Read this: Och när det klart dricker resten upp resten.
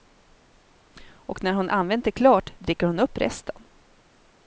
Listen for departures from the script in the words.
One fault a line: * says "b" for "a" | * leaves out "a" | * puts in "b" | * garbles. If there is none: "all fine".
* puts in "hon använt"
* says "hon" for "resten"